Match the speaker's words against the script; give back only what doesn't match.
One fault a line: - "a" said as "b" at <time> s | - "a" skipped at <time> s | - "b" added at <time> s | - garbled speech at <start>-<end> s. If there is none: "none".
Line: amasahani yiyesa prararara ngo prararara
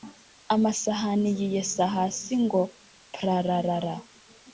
- "prararara" said as "hasi" at 1.9 s